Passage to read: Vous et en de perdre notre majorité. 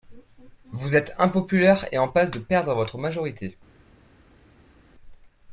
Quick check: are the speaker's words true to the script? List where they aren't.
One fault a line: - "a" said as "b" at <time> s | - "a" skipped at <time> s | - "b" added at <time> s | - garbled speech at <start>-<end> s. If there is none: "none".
- "êtes impopulaire" added at 0.9 s
- "passe" added at 2.1 s
- "notre" said as "votre" at 2.8 s